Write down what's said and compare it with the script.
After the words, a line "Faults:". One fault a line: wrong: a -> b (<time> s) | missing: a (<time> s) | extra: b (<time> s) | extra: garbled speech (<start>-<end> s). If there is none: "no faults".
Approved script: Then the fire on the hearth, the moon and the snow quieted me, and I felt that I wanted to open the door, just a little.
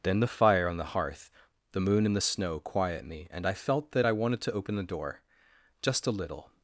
Then the fire on the hearth, the moon and the snow quiet me, and I felt that I wanted to open the door, just a little.
Faults:
wrong: quieted -> quiet (2.6 s)